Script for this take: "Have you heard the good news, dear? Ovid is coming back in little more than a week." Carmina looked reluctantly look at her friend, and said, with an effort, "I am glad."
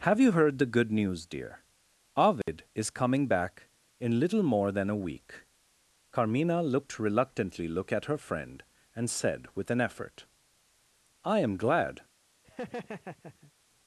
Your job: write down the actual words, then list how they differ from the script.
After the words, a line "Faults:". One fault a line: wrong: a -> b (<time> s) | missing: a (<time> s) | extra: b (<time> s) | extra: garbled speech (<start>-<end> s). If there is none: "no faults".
"Have you heard the good news, dear? Ovid is coming back in little more than a week." Carmina looked reluctantly look at her friend, and said, with an effort, "I am glad."
Faults:
no faults